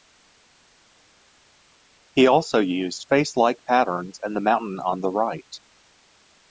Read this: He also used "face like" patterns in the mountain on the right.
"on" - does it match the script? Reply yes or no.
yes